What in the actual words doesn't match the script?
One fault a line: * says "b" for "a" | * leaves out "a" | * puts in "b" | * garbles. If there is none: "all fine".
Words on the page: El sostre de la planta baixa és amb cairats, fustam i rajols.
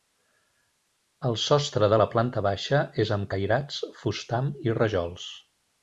all fine